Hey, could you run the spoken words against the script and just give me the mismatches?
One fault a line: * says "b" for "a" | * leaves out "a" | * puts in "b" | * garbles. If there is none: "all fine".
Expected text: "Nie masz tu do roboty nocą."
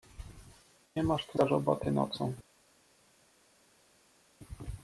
all fine